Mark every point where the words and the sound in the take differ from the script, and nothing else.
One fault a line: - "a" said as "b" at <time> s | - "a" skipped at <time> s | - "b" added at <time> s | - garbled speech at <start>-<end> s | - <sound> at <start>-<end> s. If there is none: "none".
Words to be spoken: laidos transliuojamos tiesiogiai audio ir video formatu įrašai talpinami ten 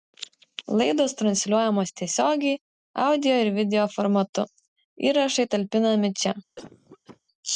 - "ten" said as "čia" at 6.2 s
- cough at 6.6-7.2 s